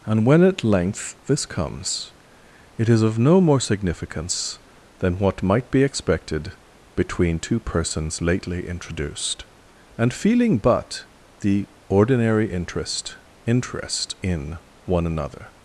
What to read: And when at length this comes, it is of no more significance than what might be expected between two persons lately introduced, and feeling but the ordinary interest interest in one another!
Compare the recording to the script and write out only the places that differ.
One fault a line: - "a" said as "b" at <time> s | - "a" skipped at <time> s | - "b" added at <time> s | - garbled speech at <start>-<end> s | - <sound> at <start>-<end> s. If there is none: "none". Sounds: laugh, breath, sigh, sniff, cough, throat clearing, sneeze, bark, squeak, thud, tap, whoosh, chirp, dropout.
none